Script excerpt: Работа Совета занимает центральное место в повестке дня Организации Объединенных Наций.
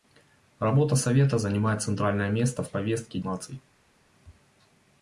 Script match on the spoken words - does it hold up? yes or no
no